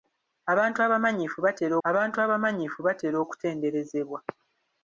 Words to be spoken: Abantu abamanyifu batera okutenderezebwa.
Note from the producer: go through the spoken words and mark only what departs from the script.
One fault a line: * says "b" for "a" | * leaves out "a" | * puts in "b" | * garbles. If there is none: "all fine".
* puts in "abantu abamanyifu batera"